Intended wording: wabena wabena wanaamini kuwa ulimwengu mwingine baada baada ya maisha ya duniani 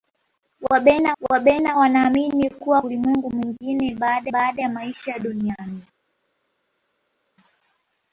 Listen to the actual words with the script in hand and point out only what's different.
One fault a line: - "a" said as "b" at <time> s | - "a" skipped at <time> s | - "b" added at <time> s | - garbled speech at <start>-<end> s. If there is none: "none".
none